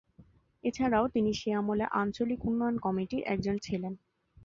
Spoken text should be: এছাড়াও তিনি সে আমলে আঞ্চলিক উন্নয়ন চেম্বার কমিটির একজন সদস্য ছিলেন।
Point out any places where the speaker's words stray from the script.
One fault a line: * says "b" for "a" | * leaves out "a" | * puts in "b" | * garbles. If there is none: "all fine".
* leaves out "চেম্বার"
* leaves out "সদস্য"